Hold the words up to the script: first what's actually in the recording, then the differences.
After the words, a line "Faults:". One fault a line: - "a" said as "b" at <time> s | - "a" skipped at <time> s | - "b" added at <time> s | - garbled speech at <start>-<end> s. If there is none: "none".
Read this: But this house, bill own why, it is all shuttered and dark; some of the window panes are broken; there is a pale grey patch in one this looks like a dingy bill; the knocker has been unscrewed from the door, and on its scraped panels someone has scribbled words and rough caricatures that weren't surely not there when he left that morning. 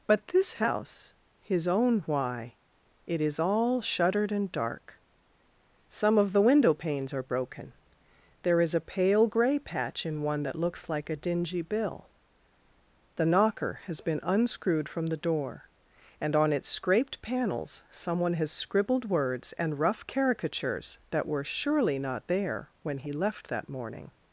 But this house, his own why, it is all shuttered and dark; some of the window panes are broken; there is a pale grey patch in one that looks like a dingy bill; the knocker has been unscrewed from the door, and on its scraped panels someone has scribbled words and rough caricatures that were surely not there when he left that morning.
Faults:
- "bill" said as "his" at 1.4 s
- "this" said as "that" at 10.4 s
- "weren't" said as "were" at 21.3 s